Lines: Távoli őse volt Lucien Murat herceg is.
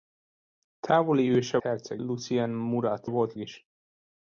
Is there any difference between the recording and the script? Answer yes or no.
yes